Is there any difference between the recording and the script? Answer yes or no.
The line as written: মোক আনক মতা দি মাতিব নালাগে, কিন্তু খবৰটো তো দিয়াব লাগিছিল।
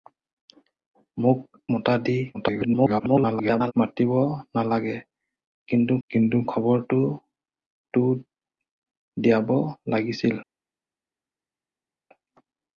yes